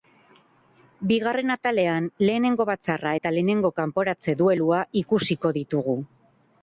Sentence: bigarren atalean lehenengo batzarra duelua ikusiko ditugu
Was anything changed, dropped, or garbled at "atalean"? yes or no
no